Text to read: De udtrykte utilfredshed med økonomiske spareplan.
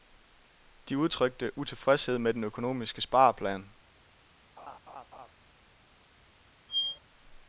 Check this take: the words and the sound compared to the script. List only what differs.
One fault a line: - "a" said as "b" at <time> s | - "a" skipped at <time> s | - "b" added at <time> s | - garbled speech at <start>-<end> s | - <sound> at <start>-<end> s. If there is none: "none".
- "den" added at 2.3 s
- laugh at 4.6-5.3 s
- squeak at 6.7-7.0 s